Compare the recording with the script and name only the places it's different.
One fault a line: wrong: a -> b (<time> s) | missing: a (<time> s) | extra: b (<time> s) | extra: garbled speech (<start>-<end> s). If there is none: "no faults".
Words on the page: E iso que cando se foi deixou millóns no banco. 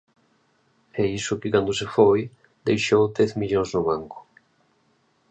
extra: dez (3.2 s)